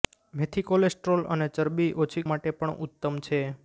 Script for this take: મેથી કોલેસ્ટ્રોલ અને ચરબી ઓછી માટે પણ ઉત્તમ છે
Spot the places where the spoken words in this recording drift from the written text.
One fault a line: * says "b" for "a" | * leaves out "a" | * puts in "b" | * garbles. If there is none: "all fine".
all fine